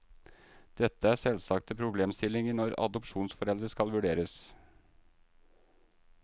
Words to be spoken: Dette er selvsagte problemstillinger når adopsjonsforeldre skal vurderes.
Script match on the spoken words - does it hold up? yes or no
yes